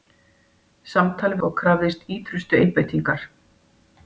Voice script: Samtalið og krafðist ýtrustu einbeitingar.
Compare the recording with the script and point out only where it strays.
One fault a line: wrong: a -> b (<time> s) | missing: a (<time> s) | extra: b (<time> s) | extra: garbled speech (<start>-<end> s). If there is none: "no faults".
no faults